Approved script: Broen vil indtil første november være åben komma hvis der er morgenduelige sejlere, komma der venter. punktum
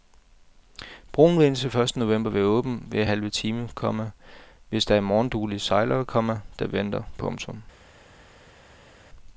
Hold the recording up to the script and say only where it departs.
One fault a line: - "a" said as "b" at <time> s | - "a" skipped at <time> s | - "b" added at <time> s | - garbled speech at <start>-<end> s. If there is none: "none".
- "hver halve time" added at 2.9 s